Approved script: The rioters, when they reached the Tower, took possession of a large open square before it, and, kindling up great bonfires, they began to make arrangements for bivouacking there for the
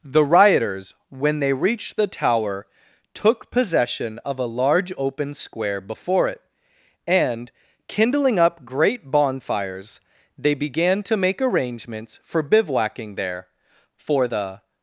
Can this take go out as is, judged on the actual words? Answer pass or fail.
pass